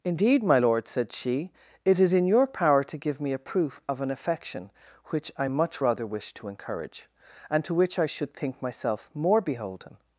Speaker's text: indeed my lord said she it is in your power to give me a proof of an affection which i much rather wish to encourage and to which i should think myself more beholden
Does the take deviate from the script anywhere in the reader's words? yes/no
no